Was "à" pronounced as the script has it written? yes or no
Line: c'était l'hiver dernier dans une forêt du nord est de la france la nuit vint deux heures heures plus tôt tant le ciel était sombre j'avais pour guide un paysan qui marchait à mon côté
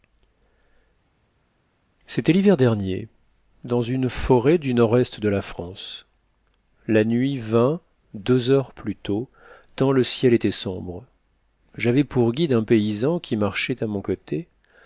yes